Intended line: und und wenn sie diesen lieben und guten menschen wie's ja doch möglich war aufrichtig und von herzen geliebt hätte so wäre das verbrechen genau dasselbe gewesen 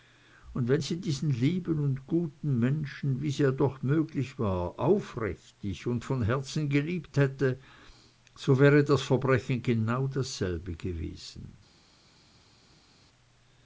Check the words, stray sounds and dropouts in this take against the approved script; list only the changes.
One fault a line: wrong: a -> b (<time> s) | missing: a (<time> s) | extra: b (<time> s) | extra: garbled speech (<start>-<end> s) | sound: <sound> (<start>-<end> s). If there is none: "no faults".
missing: und (0.7 s)